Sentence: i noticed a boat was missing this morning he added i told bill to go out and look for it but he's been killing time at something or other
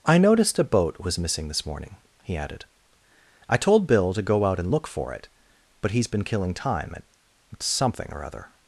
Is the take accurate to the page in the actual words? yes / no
yes